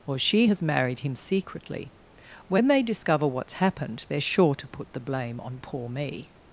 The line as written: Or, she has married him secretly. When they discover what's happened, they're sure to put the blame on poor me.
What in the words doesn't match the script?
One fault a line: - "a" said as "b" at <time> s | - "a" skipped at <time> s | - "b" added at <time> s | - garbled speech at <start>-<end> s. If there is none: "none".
none